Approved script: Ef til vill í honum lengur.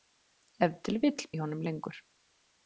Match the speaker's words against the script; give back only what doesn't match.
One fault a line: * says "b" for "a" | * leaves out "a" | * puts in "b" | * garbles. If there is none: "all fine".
all fine